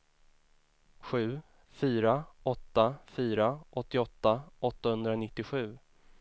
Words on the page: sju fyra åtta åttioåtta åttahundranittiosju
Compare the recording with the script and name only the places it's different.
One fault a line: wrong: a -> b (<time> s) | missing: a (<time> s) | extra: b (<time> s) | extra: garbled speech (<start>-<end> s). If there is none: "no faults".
extra: fyra (3.1 s)